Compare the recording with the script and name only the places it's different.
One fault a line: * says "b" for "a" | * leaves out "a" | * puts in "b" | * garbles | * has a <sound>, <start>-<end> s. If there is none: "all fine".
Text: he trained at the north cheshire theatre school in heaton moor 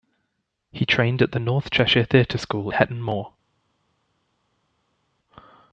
* leaves out "in"